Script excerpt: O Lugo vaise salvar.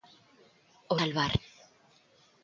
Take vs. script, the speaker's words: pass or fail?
fail